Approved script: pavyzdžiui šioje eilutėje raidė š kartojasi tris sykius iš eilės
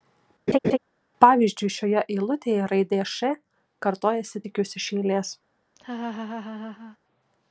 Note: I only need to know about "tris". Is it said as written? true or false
false